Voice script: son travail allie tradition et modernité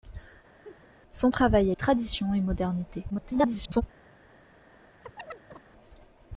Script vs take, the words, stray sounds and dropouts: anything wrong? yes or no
yes